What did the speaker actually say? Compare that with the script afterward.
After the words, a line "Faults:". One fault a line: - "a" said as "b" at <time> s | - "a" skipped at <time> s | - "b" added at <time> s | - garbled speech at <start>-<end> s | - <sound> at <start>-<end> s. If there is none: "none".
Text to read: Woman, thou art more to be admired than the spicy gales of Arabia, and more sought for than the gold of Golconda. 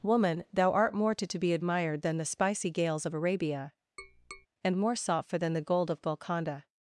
Woman, thou art more to to be admired than the spicy gales of Arabia, and more sought for than the gold of Golconda.
Faults:
- "to" added at 1.3 s
- tap at 4.0-4.5 s